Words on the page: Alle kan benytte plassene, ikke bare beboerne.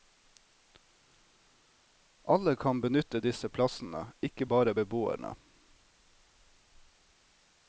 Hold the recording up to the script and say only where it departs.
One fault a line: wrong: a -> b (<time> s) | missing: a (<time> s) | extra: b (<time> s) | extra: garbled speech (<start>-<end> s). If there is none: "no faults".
extra: disse (3.2 s)